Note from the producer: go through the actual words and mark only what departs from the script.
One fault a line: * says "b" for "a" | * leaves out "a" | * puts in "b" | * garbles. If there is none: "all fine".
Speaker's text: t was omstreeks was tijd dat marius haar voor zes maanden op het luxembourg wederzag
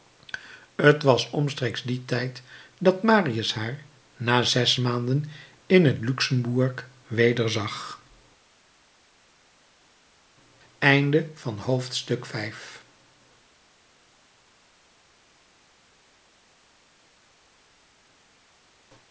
* says "dien" for "was"
* says "na" for "voor"
* says "in" for "op"